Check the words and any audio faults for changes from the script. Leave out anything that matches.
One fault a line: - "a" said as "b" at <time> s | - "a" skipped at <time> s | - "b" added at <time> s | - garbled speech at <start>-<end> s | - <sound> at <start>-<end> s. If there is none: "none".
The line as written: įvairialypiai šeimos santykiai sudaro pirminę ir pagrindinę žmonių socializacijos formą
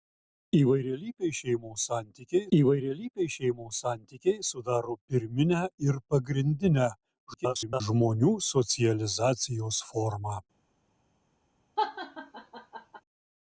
- "įvairialypiai šeimos santykiai" added at 2.6 s
- garbled speech at 7.3-7.8 s
- laugh at 11.8-13.0 s